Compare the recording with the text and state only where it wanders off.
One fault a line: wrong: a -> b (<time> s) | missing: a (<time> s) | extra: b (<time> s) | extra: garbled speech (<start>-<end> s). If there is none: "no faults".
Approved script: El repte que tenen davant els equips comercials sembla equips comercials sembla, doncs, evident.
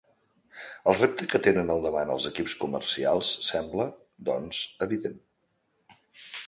extra: al (1.7 s)
missing: equips comercials sembla (3.9 s)